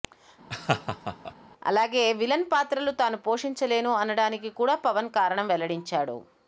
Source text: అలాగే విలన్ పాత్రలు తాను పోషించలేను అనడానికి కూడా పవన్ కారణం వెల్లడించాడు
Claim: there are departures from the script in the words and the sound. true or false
true